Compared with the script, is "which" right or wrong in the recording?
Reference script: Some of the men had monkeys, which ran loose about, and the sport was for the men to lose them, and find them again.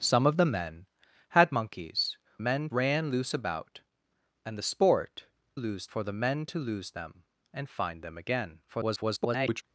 wrong